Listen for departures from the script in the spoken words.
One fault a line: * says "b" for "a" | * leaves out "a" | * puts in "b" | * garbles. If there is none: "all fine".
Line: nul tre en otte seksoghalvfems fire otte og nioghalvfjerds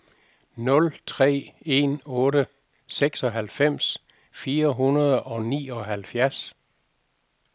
* says "hundrede" for "otte"